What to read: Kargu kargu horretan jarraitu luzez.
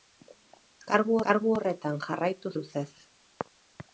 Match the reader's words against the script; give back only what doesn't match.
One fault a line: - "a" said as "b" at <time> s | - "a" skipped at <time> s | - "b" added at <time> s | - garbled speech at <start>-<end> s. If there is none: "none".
none